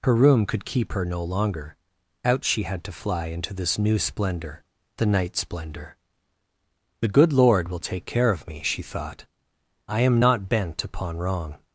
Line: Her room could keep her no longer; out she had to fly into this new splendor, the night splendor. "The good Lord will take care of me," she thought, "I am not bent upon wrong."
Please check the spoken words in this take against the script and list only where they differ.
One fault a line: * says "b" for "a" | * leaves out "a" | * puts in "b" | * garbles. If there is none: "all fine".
all fine